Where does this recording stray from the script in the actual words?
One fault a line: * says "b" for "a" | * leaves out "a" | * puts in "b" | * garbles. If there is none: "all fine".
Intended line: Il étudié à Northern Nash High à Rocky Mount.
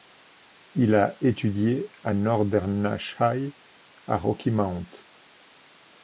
* puts in "a"